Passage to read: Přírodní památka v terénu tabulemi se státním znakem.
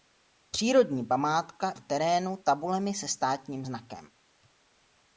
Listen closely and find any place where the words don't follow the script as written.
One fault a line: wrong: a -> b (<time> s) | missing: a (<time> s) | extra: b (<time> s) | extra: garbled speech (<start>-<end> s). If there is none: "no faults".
no faults